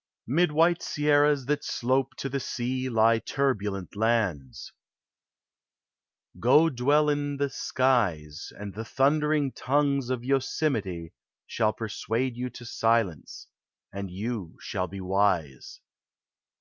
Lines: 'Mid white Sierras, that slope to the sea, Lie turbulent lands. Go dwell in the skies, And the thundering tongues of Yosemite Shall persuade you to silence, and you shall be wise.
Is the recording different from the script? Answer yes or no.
no